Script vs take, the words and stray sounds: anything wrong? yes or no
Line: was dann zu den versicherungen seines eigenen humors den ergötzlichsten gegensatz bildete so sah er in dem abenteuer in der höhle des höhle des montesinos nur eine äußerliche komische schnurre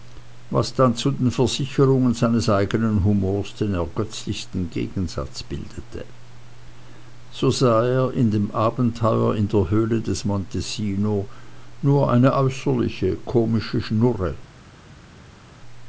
yes